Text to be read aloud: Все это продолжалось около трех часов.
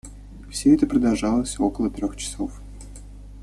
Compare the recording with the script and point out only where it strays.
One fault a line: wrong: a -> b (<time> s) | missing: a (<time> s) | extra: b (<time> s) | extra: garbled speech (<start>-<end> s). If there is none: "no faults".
no faults